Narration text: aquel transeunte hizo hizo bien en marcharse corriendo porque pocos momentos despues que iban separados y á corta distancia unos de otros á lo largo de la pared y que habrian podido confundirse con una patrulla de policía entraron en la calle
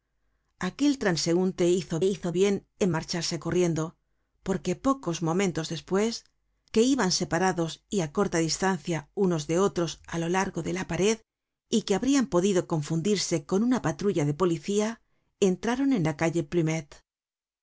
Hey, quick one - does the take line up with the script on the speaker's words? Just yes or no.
yes